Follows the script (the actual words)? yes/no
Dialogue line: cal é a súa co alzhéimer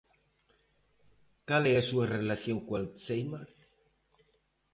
no